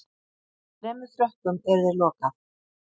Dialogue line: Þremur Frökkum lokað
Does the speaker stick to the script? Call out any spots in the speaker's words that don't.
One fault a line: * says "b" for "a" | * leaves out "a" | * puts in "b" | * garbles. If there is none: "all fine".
* puts in "yrði"